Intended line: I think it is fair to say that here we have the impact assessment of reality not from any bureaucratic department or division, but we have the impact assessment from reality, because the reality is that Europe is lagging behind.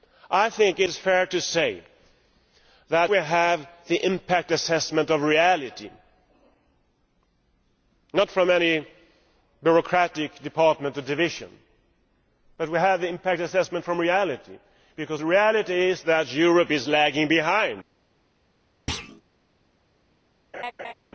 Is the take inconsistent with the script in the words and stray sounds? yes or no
yes